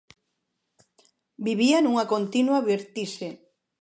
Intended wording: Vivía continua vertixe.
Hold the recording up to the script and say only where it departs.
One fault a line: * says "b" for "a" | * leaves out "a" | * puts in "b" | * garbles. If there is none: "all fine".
* puts in "nunha"